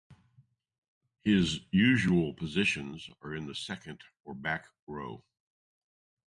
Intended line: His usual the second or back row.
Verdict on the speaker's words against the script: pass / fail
fail